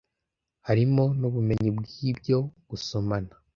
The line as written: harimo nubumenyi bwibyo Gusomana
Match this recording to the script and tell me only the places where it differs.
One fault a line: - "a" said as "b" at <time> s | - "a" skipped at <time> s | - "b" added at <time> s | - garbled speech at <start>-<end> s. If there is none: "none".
none